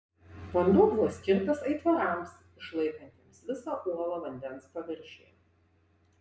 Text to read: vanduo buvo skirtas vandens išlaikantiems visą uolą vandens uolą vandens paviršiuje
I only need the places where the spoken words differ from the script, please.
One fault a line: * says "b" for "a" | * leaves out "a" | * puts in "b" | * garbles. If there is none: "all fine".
* says "aitvarams" for "vandens"
* leaves out "uolą vandens"